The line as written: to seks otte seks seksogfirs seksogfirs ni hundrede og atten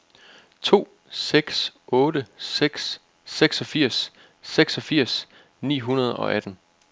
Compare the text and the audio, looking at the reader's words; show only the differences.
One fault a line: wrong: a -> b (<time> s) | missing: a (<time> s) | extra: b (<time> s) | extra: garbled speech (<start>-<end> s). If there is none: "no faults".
no faults